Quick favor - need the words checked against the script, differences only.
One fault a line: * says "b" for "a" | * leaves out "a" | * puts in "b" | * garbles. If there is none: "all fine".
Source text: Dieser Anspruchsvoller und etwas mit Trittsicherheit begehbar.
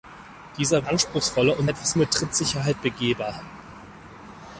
all fine